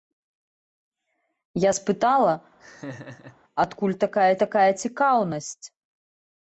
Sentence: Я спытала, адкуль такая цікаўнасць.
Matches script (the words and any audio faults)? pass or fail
fail